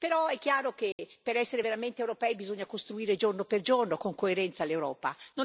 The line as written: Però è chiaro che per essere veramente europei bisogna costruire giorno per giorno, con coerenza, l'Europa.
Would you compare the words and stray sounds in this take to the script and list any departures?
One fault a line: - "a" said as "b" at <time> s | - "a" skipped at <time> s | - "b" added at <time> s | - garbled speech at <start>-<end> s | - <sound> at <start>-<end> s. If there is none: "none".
- dropout at 0.9-1.0 s